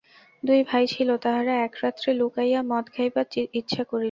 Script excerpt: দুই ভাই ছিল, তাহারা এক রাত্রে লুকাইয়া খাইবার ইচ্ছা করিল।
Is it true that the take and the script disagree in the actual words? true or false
true